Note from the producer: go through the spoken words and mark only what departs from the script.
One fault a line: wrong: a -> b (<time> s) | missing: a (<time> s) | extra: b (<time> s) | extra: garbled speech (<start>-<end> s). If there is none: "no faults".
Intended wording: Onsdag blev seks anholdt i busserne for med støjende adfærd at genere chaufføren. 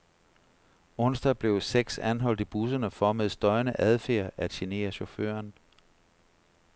no faults